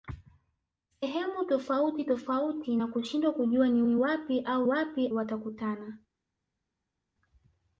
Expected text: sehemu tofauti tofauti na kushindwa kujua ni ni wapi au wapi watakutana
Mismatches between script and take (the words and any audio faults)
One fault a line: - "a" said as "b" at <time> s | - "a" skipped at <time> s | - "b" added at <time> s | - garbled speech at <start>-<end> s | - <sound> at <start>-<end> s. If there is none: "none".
none